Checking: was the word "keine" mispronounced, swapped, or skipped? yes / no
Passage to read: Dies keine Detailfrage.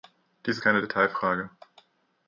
no